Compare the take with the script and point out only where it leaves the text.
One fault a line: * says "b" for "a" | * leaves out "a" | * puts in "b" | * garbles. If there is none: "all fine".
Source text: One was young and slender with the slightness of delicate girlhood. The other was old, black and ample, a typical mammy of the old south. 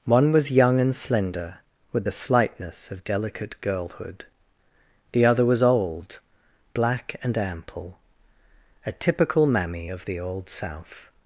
all fine